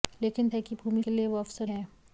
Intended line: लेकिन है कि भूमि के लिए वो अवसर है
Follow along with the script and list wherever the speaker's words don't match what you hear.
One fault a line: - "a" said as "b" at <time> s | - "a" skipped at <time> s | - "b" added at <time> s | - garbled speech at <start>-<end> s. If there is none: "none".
none